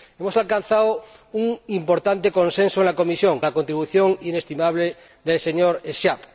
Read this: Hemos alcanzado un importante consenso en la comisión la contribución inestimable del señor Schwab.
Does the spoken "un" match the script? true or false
true